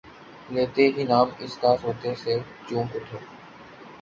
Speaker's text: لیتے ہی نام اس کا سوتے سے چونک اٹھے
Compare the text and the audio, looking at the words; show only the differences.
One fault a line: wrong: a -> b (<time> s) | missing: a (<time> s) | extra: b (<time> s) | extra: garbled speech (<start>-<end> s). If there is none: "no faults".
no faults